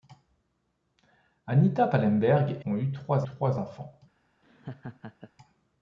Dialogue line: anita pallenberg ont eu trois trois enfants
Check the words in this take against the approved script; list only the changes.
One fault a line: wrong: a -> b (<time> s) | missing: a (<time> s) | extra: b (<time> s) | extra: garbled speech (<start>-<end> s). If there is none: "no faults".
no faults